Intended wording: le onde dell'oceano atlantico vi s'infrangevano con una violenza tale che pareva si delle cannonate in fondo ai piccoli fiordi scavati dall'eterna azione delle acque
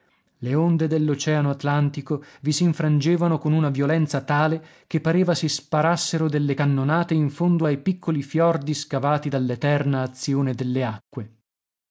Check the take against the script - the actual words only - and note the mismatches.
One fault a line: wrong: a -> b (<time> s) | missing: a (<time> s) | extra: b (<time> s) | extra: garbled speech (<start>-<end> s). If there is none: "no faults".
extra: sparassero (5.5 s)